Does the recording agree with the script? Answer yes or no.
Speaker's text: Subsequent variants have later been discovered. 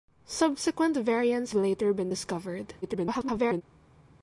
no